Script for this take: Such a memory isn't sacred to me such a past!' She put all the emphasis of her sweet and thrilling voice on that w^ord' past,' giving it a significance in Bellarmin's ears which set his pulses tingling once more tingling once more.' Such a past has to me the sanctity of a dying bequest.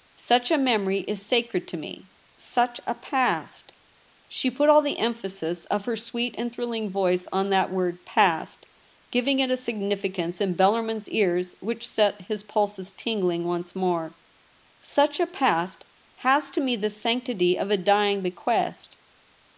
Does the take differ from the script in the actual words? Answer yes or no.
yes